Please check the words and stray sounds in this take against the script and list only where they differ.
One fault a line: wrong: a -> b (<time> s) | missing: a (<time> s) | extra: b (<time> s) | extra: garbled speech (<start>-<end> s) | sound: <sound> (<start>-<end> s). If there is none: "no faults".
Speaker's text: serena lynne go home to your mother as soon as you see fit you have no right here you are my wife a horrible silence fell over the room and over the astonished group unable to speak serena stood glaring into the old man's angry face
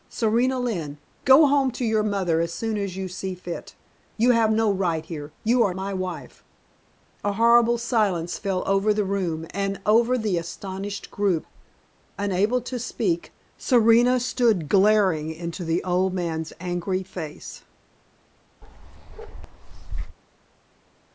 sound: bark (18.6-20.2 s)